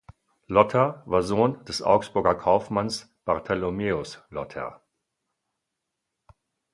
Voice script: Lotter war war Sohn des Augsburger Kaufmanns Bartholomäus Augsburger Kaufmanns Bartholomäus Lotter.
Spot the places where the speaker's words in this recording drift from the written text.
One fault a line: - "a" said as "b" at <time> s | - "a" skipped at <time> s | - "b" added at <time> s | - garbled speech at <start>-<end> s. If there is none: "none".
- "war" skipped at 1.2 s
- "Augsburger Kaufmanns Bartholomäus" skipped at 4.2 s